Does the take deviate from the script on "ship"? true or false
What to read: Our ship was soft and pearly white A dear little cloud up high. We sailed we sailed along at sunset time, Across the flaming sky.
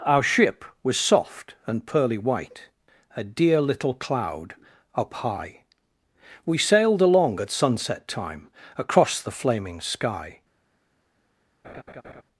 false